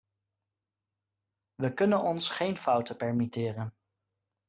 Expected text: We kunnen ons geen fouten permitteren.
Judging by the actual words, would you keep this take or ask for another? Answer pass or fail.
pass